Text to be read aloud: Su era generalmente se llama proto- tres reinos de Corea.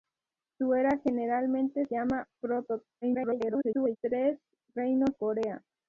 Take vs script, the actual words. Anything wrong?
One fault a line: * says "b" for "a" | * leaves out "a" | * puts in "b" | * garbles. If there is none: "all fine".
* leaves out "se"
* garbles
* leaves out "de"